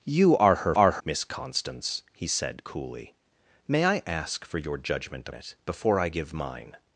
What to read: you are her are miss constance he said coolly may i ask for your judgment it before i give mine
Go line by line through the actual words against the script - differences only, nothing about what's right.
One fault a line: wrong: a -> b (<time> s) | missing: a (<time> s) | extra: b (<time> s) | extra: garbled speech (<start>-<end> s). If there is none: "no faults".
no faults